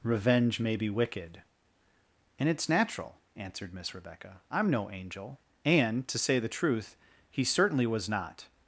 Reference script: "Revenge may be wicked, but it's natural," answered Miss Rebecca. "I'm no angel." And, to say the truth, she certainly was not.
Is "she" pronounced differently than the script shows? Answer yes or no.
yes